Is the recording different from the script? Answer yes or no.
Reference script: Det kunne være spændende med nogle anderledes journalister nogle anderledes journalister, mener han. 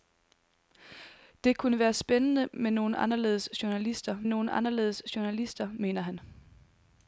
no